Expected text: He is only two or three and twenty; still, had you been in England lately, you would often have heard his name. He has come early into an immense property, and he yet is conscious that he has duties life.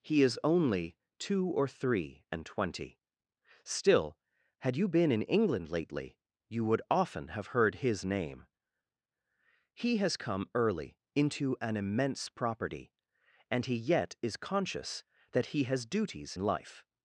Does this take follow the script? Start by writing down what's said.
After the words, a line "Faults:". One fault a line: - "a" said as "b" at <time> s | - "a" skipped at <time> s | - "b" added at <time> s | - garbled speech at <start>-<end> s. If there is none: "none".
He is only two or three and twenty; still, had you been in England lately, you would often have heard his name. He has come early into an immense property, and he yet is conscious that he has duties life.
Faults:
none